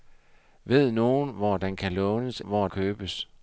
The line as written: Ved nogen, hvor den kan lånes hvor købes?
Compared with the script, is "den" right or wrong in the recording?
right